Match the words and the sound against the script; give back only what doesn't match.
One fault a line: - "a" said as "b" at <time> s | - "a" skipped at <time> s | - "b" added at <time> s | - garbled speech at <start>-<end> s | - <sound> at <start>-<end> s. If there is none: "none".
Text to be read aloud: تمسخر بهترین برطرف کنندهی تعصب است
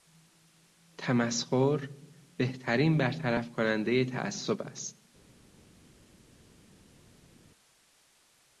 none